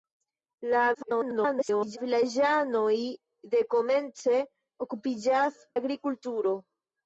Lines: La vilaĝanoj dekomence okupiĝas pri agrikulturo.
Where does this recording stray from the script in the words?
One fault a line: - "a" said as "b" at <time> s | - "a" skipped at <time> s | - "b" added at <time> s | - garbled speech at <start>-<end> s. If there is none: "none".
- garbled speech at 0.9-2.0 s
- "pri" skipped at 5.6 s